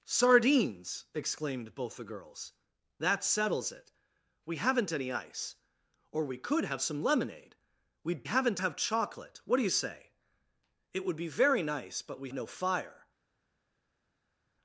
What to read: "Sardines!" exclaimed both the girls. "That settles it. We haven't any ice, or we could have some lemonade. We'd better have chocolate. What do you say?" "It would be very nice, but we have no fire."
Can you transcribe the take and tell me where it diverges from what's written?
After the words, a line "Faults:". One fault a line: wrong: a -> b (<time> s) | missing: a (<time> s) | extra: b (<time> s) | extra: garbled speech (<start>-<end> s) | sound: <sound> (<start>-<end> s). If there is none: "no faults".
"Sardines!" exclaimed both the girls. "That settles it. We haven't any ice, or we could have some lemonade. We'd haven't have chocolate. What do you say?" "It would be very nice, but we no fire."
Faults:
wrong: better -> haven't (8.2 s)
missing: have (12.3 s)